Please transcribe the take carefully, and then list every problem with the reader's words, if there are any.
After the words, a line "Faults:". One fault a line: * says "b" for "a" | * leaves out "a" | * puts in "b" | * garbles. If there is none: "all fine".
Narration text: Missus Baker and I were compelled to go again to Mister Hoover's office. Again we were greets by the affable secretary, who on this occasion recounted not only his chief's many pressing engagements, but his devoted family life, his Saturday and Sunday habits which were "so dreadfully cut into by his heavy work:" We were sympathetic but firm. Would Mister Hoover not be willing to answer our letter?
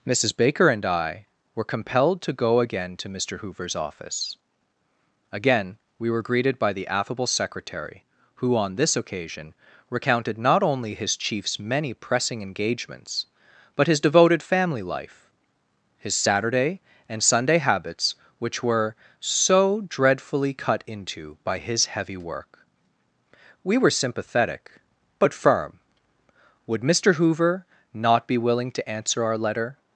Missus Baker and I were compelled to go again to Mister Hoover's office. Again we were greeted by the affable secretary, who on this occasion recounted not only his chief's many pressing engagements, but his devoted family life, his Saturday and Sunday habits which were "so dreadfully cut into by his heavy work:" We were sympathetic but firm. Would Mister Hoover not be willing to answer our letter?
Faults:
* says "greeted" for "greets"